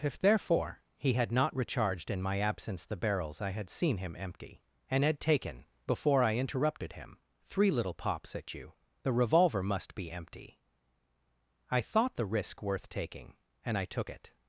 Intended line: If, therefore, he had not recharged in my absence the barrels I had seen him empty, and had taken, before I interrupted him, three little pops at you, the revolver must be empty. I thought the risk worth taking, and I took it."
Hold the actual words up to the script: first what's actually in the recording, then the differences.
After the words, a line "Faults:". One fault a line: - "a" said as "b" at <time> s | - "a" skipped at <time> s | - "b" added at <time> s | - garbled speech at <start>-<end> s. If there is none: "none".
If, therefore, he had not recharged in my absence the barrels I had seen him empty, and had taken, before I interrupted him, three little pops at you, the revolver must be empty. I thought the risk worth taking, and I took it."
Faults:
none